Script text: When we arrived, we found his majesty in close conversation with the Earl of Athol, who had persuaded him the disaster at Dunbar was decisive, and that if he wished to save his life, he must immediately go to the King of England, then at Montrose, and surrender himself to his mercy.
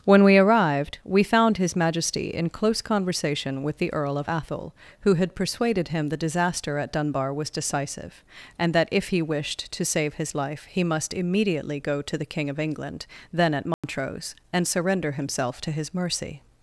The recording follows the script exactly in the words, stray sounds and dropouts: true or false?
false